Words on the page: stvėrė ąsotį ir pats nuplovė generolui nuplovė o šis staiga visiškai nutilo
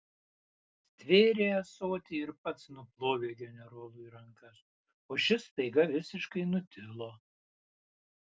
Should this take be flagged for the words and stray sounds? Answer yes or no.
yes